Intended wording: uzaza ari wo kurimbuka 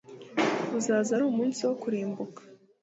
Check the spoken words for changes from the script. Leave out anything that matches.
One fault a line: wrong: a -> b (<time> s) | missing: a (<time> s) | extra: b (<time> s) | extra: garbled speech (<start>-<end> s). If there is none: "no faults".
extra: umunsi (1.3 s)